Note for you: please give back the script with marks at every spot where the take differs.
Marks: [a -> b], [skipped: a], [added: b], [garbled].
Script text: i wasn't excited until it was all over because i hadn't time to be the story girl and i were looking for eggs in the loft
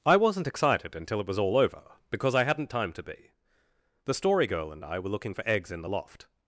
i wasn't excited until it was all over because i hadn't time to be the story girl and i were looking for eggs in the loft